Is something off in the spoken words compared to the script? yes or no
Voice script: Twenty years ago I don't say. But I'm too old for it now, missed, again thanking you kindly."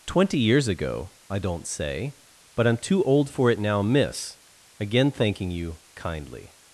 yes